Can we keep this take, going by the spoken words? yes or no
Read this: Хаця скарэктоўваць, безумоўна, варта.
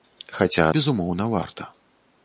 no